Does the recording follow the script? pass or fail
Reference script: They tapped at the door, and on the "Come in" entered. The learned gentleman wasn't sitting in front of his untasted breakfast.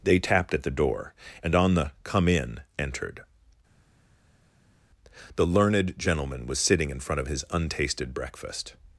fail